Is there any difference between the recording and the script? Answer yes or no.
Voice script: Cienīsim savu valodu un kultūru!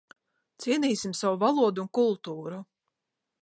no